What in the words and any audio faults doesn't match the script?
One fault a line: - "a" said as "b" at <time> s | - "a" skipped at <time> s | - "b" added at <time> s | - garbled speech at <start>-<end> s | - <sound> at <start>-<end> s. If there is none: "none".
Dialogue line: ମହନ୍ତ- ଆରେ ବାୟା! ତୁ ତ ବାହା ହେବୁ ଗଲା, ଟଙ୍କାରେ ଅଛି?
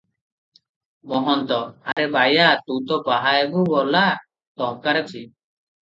- dropout at 1.9-2.0 s